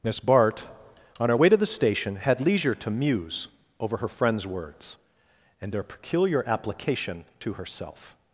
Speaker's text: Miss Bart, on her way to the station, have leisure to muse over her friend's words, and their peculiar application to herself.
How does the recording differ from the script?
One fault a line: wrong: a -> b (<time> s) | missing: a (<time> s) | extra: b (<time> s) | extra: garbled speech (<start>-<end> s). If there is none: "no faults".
wrong: have -> had (2.2 s)